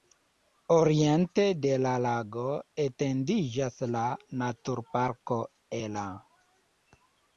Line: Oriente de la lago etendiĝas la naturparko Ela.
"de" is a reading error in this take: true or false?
false